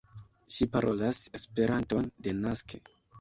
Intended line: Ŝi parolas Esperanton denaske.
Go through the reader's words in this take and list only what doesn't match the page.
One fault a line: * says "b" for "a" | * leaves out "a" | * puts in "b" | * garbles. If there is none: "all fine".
all fine